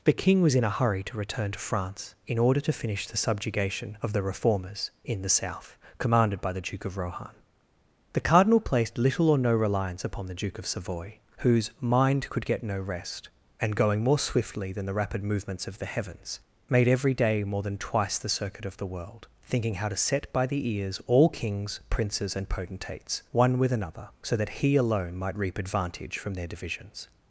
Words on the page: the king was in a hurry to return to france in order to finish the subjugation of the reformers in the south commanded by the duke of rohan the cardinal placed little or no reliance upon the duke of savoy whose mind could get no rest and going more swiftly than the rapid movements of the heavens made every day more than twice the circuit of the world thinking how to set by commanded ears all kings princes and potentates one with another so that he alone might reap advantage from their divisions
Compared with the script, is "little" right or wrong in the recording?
right